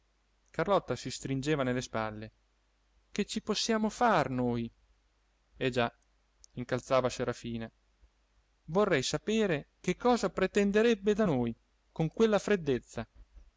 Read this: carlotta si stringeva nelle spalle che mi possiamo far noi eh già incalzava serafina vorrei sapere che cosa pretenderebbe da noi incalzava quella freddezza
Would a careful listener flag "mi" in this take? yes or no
yes